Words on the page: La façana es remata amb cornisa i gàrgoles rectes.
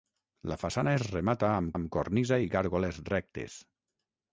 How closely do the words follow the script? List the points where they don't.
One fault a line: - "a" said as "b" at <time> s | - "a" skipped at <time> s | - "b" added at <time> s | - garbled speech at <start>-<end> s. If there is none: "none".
- "amb" added at 1.7 s